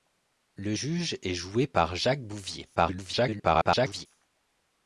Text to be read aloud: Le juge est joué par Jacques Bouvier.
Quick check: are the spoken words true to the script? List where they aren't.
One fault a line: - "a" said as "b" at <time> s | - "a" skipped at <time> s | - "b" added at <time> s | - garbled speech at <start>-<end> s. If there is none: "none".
- garbled speech at 2.8-4.1 s